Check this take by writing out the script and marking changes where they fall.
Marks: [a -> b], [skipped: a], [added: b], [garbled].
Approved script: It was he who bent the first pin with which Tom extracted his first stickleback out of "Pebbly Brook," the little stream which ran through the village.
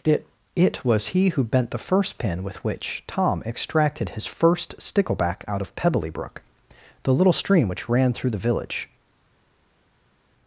It [added: it] was he who bent the first pin with which Tom extracted his first stickleback out of "Pebbly Brook," the little stream which ran through the village.